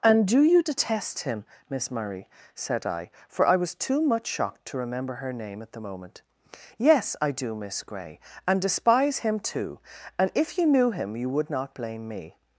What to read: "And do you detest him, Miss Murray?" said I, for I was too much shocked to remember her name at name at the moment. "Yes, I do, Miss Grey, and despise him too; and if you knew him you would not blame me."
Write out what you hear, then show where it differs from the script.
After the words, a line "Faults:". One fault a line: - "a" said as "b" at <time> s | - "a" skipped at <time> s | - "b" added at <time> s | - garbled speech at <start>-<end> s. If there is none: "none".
"And do you detest him, Miss Murray?" said I, for I was too much shocked to remember her name at the moment. "Yes, I do, Miss Grey, and despise him too; and if you knew him you would not blame me."
Faults:
- "name at" skipped at 5.7 s